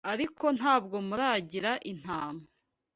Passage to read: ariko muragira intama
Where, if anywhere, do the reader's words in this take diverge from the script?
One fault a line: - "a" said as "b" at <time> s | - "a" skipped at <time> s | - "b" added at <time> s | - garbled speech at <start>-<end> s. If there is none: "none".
- "ntabwo" added at 0.6 s